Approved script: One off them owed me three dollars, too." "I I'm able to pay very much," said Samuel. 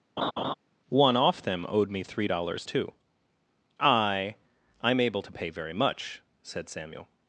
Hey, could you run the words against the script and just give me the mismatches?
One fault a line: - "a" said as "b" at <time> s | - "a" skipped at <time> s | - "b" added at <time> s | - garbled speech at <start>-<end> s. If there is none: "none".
none